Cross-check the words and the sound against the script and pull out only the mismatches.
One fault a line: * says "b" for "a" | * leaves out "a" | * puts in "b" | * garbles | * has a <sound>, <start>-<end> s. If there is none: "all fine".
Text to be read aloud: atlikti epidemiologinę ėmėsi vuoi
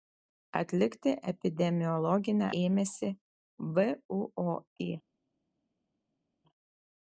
all fine